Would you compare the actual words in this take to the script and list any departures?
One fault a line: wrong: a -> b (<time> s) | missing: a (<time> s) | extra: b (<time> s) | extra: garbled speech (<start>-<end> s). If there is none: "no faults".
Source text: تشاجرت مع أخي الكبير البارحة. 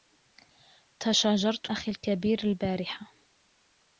missing: مع (1.7 s)